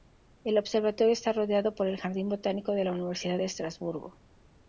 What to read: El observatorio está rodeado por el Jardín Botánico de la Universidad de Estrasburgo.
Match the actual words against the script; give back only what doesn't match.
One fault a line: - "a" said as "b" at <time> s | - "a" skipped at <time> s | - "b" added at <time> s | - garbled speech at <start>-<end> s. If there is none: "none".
none